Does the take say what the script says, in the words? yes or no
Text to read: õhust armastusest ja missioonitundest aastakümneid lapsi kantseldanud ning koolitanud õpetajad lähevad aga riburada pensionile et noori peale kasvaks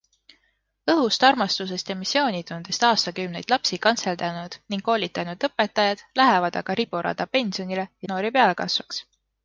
yes